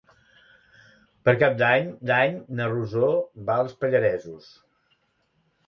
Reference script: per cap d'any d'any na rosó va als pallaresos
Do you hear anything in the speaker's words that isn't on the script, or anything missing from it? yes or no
no